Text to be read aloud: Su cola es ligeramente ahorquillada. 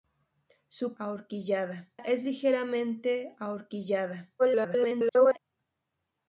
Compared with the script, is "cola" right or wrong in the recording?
wrong